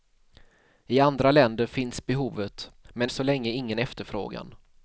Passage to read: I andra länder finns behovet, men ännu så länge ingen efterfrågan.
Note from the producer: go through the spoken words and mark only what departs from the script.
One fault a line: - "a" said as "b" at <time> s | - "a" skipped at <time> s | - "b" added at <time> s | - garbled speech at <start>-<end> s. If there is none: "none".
- "ännu" skipped at 3.1 s